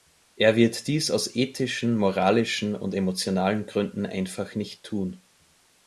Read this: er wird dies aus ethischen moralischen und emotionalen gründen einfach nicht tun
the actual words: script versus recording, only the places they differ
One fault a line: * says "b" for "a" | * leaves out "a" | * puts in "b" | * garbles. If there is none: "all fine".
all fine